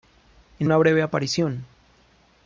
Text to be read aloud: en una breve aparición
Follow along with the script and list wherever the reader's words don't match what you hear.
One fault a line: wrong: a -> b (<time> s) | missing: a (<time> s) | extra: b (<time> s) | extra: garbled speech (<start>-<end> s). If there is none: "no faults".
no faults